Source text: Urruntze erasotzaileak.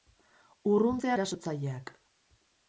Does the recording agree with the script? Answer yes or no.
yes